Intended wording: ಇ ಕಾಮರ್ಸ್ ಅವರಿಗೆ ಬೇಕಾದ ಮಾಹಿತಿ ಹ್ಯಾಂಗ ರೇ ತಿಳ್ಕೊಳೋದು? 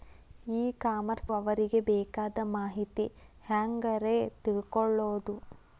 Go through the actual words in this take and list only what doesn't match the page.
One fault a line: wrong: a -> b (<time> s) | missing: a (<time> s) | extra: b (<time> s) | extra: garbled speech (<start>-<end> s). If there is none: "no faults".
no faults